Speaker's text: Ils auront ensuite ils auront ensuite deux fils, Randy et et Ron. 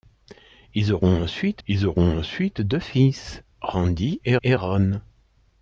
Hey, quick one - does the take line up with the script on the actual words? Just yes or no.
yes